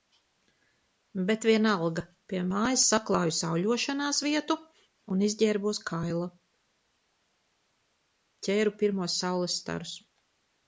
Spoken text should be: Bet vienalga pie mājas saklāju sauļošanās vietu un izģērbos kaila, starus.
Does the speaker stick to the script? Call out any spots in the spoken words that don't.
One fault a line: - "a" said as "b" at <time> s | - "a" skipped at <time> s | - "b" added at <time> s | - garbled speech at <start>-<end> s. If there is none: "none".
- "ķēru pirmos saules" added at 8.5 s